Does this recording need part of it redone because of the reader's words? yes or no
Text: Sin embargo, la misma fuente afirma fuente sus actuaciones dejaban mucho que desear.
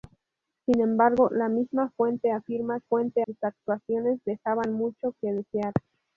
no